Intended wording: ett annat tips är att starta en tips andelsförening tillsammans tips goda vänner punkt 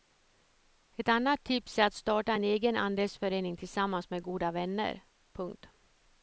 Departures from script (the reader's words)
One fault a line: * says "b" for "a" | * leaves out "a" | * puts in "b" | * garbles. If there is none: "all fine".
* says "egen" for "tips"
* says "med" for "tips"